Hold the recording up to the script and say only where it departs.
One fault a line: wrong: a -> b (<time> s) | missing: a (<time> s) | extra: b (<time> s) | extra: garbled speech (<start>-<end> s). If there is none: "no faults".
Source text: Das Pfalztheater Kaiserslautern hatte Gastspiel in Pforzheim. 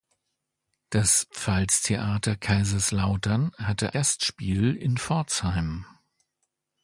no faults